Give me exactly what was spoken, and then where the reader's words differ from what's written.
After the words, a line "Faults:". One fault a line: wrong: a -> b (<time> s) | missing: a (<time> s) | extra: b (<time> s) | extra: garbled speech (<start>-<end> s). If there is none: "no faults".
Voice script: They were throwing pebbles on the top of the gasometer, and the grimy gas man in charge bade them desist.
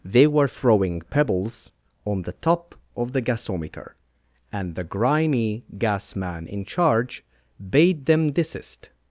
They were throwing pebbles on the top of the gasometer, and the grimy gas man in charge bade them desist.
Faults:
no faults